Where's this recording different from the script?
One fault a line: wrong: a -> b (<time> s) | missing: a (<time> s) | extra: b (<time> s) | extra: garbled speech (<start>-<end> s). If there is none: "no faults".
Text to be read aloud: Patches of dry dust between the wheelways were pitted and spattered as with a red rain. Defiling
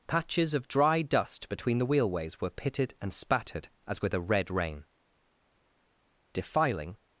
no faults